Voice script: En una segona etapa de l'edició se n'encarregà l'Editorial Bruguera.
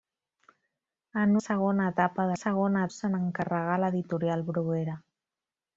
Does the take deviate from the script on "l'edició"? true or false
true